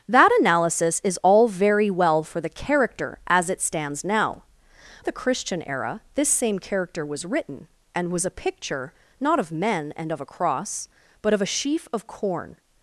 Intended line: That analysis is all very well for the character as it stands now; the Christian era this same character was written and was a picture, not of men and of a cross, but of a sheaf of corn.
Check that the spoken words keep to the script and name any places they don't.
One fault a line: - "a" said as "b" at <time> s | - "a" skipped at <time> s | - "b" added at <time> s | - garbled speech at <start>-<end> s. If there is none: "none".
none